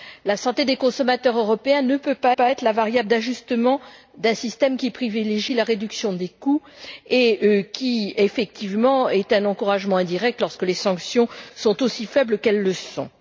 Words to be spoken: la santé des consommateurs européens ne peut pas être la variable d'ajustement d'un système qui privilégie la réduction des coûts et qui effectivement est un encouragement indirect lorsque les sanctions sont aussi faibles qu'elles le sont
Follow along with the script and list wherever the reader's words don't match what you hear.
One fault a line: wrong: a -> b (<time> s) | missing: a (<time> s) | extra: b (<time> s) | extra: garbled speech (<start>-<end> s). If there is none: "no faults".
extra: pas (2.3 s)